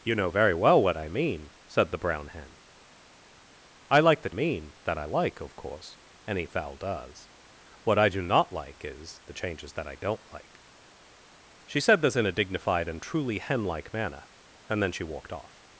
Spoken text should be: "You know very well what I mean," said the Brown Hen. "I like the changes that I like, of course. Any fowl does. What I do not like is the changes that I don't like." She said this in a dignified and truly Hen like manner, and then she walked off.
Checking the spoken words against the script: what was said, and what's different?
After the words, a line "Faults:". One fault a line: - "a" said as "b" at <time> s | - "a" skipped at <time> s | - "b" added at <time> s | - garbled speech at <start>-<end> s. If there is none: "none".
"You know very well what I mean," said the Brown Hen. "I like the mean that I like, of course. Any fowl does. What I do not like is the changes that I don't like." She said this in a dignified and truly Hen like manner, and then she walked off.
Faults:
- "changes" said as "mean" at 4.3 s